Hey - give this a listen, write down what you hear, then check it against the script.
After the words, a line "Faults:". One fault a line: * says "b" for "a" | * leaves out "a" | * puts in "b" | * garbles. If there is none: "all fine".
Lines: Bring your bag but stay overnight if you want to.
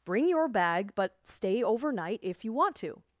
Bring your bag but stay overnight if you want to.
Faults:
all fine